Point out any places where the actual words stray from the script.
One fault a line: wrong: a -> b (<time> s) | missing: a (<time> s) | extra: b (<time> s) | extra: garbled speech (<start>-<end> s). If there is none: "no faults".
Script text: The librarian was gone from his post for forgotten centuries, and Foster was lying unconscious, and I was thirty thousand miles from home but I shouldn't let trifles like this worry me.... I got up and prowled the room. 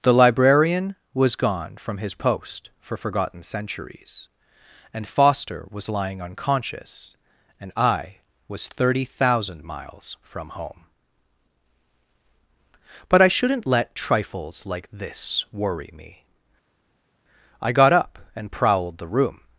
no faults